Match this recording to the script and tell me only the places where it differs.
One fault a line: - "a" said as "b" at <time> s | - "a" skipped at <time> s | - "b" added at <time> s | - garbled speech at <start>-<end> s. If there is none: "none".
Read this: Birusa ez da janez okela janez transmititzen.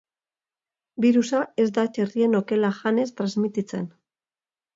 - "janez" said as "txerrien" at 2.0 s